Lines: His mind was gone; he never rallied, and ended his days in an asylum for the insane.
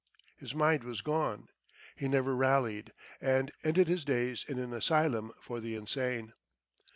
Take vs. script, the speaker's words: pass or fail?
pass